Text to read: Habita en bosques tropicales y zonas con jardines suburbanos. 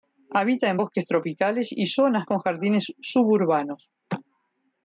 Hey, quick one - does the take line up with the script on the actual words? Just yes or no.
yes